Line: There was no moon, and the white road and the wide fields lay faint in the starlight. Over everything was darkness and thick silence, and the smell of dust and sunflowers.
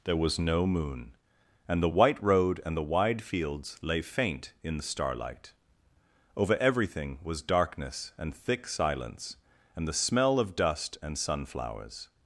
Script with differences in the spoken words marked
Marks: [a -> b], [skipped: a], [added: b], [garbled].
There was no moon, and the white road and the wide fields lay faint in the starlight. Over everything was darkness and thick silence, and the smell of dust and sunflowers.